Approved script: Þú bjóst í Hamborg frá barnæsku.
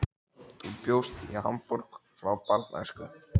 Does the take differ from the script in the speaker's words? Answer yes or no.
no